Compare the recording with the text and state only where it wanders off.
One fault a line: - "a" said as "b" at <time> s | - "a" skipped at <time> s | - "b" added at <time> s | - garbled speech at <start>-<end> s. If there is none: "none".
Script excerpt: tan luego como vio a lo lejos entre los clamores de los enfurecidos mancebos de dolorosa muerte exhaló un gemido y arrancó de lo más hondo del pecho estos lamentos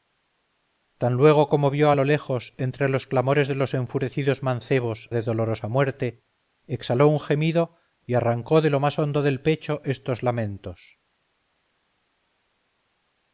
none